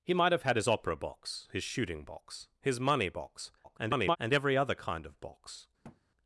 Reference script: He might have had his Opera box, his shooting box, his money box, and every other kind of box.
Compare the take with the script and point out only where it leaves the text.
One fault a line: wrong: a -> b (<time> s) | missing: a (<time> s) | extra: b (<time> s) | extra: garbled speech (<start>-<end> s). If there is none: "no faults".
extra: garbled speech (3.6-4.2 s)